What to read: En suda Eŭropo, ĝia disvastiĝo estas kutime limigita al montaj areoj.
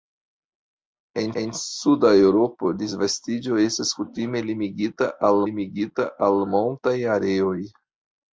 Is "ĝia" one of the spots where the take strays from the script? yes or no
yes